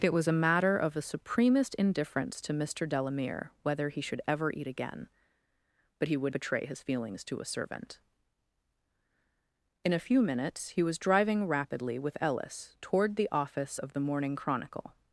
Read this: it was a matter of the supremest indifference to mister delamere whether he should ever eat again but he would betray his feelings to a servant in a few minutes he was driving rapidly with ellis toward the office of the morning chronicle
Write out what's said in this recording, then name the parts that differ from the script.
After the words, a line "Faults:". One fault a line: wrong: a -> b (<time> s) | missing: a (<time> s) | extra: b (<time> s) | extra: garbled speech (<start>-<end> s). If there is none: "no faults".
it was a matter of the supremest indifference to mister delamere whether he should ever eat again but he would betray his feelings to a servant in a few minutes he was driving rapidly with ellis toward the office of the morning chronicle
Faults:
no faults